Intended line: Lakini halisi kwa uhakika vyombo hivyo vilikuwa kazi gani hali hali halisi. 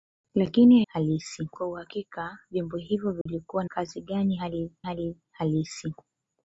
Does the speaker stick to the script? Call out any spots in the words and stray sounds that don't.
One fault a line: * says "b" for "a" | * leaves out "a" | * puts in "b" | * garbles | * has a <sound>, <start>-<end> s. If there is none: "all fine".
* has a dropout, 3.2-3.3 s